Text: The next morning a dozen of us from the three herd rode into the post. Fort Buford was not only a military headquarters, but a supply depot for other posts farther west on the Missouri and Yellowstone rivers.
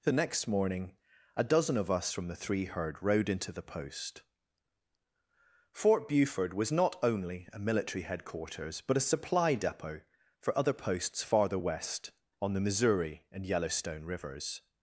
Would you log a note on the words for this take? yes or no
no